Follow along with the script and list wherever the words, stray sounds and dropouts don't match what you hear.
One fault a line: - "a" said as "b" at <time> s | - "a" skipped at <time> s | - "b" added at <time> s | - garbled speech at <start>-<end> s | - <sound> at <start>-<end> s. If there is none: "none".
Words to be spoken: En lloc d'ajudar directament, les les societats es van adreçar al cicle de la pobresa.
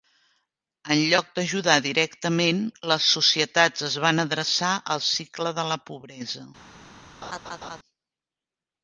- "les" skipped at 3.1 s
- laugh at 7.2-7.8 s